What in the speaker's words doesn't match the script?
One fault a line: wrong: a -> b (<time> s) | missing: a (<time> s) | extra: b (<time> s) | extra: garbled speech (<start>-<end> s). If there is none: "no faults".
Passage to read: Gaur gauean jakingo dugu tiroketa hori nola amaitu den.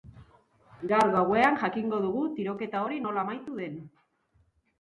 no faults